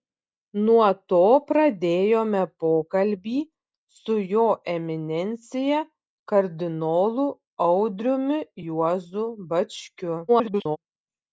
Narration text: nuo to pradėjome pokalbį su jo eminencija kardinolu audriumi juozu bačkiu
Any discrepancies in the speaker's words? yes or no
yes